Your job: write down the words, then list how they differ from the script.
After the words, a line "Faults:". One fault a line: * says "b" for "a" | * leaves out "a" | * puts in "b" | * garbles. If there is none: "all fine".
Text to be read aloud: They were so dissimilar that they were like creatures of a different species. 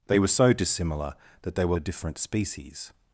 They were so dissimilar that they were a different species.
Faults:
* leaves out "like creatures of"